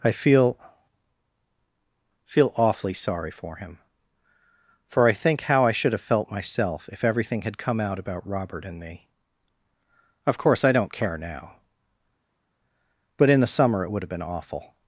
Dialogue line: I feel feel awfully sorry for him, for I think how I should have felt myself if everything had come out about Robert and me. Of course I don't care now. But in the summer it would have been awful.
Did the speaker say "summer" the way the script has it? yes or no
yes